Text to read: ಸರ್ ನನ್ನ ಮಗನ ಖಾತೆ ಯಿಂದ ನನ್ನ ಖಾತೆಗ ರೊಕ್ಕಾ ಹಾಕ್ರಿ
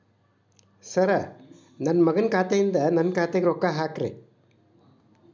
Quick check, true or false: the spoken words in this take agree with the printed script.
true